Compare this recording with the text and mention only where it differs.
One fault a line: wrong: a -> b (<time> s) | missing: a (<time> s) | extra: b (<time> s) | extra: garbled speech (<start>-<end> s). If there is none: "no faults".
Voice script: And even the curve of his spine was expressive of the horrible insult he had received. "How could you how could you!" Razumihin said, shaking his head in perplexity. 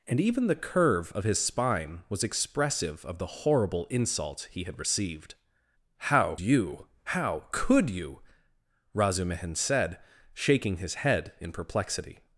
missing: could (6.3 s)